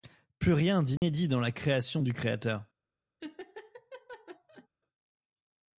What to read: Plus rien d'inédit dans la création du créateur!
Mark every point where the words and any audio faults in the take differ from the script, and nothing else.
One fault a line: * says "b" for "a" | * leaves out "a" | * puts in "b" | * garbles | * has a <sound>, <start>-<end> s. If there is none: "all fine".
* has a dropout, 1.0-1.0 s
* has a laugh, 3.2-4.7 s